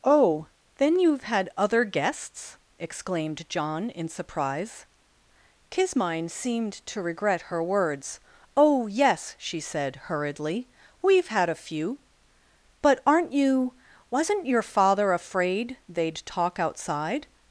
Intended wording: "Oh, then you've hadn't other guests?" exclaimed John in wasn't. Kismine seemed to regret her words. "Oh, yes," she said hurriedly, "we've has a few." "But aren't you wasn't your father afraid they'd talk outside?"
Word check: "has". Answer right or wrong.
wrong